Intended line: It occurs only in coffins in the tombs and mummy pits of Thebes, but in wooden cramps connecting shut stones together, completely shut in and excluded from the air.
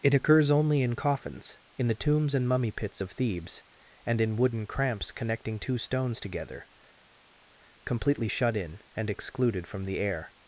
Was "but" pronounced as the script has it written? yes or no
no